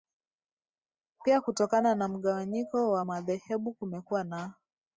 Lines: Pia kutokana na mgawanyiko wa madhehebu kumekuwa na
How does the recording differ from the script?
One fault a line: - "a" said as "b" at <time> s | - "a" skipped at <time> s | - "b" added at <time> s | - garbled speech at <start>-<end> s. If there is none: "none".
none